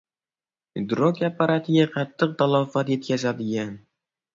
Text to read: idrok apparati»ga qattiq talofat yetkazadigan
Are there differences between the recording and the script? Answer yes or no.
no